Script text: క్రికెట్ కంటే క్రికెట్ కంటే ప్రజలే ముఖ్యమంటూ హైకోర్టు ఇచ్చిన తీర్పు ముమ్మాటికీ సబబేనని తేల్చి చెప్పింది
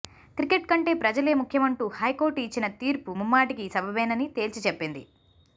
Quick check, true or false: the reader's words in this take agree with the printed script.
false